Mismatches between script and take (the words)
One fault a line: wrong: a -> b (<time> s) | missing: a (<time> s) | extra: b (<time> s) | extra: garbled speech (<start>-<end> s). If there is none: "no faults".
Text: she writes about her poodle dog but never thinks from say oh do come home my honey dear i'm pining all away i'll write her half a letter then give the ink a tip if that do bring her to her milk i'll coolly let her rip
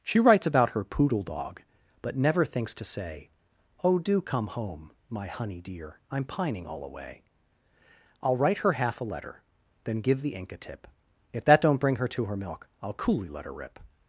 wrong: from -> to (2.7 s)
wrong: do -> don't (11.6 s)